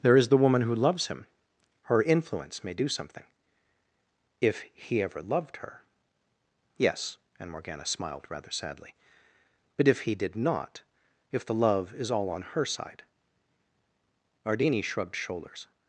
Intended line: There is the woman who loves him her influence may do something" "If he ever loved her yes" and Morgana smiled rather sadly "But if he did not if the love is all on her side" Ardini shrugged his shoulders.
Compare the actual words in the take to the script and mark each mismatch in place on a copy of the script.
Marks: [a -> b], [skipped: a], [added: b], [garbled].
There is the woman who loves him her influence may do something" "If he ever loved her yes" and Morgana smiled rather sadly "But if he did not if the love is all on her side" Ardini shrugged [skipped: his] shoulders.